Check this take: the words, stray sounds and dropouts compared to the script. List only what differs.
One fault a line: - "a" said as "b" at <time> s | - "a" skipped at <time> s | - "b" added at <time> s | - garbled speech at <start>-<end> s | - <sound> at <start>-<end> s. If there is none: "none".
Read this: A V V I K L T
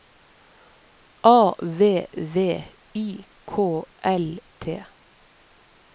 none